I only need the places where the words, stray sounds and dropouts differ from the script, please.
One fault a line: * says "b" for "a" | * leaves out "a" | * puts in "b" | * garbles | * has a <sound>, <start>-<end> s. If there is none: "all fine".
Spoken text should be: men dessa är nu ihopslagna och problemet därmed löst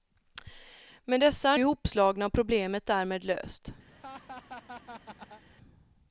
* leaves out "nu"
* has a laugh, 3.9-5.4 s